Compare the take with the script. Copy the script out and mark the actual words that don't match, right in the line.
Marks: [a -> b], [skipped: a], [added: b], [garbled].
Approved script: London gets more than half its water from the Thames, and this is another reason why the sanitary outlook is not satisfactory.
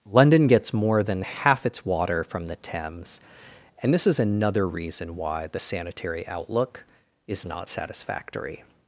London gets more than half its water from the Thames, and this is another reason why the sanitary outlook is not satisfactory.